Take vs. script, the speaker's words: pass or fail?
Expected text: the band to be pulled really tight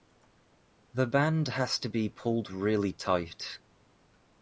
fail